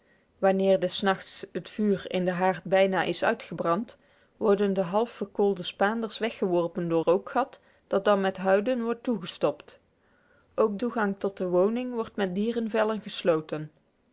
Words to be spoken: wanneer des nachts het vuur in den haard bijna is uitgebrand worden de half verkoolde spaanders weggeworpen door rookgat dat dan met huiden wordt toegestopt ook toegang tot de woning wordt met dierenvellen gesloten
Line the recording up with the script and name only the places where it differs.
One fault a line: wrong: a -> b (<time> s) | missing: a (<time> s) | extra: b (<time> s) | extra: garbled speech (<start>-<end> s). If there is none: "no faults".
no faults